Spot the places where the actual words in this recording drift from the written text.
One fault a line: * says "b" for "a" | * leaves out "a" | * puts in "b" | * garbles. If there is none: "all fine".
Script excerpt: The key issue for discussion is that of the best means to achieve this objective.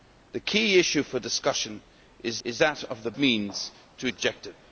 * puts in "is"
* leaves out "best"
* leaves out "achieve this"